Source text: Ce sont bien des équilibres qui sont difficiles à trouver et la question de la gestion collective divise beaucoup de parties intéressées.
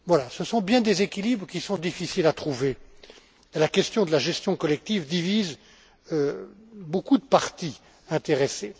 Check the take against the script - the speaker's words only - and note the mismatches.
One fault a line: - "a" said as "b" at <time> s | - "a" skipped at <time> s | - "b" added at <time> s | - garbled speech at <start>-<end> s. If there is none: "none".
none